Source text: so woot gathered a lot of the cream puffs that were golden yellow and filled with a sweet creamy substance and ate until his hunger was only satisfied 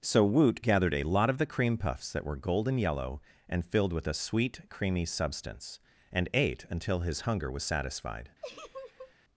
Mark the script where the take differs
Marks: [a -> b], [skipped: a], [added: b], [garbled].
so woot gathered a lot of the cream puffs that were golden yellow and filled with a sweet creamy substance and ate until his hunger was [skipped: only] satisfied